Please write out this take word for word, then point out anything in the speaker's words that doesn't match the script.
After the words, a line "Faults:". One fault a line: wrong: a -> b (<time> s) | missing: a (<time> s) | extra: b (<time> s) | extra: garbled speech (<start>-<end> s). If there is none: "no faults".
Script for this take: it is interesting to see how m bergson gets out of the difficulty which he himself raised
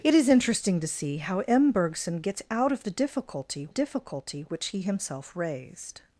it is interesting to see how m bergson gets out of the difficulty difficulty which he himself raised
Faults:
extra: difficulty (3.7 s)